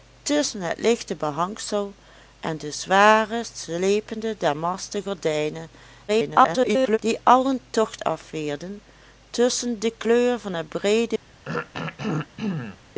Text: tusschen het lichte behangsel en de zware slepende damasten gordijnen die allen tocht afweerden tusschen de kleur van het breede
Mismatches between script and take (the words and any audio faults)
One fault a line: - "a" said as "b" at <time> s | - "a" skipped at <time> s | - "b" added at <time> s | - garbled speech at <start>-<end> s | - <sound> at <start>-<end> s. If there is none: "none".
- garbled speech at 6.1-7.0 s
- throat clearing at 11.4-12.8 s